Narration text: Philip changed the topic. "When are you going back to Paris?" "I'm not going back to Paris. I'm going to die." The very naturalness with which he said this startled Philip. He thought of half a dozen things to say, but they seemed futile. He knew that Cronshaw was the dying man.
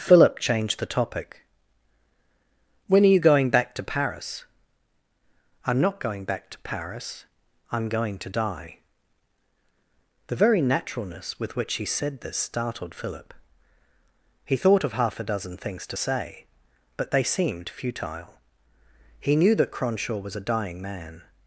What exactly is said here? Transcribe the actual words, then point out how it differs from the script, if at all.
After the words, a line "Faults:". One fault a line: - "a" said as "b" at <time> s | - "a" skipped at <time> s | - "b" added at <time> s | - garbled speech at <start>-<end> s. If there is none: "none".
Philip changed the topic. "When are you going back to Paris?" "I'm not going back to Paris. I'm going to die." The very naturalness with which he said this startled Philip. He thought of half a dozen things to say, but they seemed futile. He knew that Cronshaw was a dying man.
Faults:
- "the" said as "a" at 20.4 s